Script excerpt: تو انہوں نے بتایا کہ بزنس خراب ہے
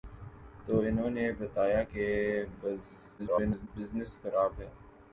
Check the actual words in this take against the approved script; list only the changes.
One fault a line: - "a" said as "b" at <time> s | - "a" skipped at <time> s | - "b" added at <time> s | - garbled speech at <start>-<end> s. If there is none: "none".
- garbled speech at 3.2-3.7 s